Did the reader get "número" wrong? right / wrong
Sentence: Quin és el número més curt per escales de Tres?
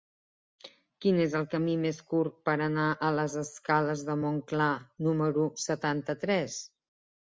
wrong